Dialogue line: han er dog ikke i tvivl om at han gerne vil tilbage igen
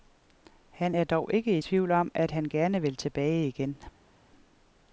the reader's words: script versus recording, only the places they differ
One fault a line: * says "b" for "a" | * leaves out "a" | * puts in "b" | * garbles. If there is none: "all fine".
all fine